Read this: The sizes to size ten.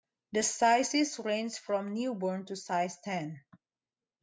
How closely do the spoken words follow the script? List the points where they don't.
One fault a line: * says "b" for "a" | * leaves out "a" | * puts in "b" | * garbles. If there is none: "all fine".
* puts in "range from newborn"